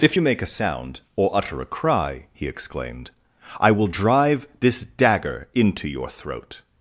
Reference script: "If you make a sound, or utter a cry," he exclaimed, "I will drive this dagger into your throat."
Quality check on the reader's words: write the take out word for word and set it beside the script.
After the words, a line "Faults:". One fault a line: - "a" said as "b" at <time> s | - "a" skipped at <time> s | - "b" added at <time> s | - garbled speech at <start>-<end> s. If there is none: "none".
"If you make a sound, or utter a cry," he exclaimed, "I will drive this dagger into your throat."
Faults:
none